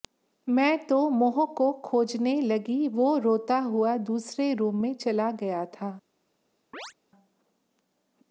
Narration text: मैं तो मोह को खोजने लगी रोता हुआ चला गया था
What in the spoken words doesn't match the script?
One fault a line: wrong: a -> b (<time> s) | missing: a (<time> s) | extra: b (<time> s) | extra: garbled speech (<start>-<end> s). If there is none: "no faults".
extra: वो (2.9 s)
extra: दूसरे रूम में (4.0 s)